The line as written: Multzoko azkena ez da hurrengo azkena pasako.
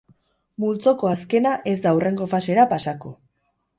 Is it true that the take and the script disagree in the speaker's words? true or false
true